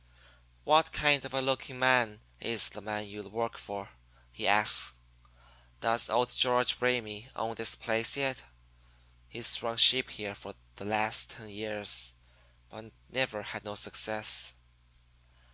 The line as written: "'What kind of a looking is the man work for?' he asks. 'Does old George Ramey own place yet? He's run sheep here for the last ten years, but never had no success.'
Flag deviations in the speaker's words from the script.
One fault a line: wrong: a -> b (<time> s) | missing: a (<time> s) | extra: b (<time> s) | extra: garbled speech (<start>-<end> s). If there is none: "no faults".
extra: man (1.8 s)
extra: you (3.0 s)
extra: this (7.5 s)